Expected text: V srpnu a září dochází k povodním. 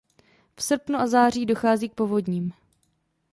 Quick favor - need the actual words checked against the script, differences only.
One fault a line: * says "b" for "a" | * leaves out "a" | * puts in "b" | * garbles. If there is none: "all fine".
all fine